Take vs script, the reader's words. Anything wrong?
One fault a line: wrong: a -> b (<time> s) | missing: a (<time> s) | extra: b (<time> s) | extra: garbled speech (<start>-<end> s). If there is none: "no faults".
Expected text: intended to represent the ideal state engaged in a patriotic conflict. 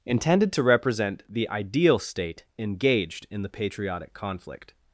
wrong: a -> the (3.4 s)